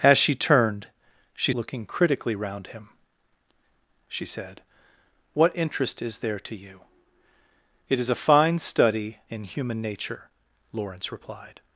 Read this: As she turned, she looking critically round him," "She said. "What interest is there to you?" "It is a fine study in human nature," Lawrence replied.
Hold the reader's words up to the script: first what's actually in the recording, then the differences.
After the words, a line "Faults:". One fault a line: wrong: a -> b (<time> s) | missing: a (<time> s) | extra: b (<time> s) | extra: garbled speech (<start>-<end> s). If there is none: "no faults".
As she turned, she looking critically round him," "She said. "What interest is there to you?" "It is a fine study in human nature," Lawrence replied.
Faults:
no faults